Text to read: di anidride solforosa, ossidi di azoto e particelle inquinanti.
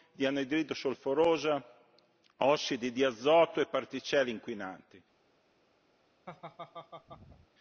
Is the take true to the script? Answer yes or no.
yes